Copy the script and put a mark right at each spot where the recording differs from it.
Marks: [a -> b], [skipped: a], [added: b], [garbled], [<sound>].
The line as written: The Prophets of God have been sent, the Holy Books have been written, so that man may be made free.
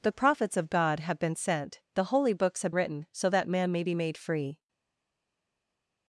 The Prophets of God have been sent, the Holy Books have [skipped: been] written, so that man may be made free.